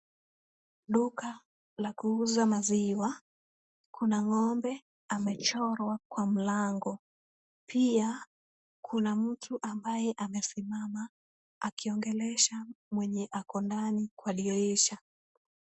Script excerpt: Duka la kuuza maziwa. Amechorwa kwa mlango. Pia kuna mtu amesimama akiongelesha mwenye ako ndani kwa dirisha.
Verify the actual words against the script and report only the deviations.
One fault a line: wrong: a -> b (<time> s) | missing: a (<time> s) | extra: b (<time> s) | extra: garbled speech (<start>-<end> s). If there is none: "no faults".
extra: Kuna ng'ombe (4.0 s)
extra: ambaye (9.6 s)